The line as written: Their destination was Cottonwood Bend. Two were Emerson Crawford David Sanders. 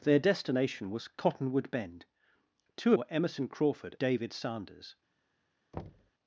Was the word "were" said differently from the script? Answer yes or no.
no